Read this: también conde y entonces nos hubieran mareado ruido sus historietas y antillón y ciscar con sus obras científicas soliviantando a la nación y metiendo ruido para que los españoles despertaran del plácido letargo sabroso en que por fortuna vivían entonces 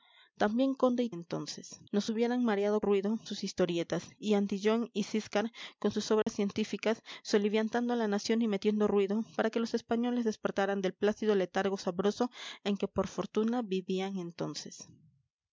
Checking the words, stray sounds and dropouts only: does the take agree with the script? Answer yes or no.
no